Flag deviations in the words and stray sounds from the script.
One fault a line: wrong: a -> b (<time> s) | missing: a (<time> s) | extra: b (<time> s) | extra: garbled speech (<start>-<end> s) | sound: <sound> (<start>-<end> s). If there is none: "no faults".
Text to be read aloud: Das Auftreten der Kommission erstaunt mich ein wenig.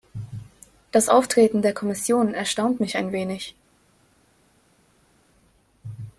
no faults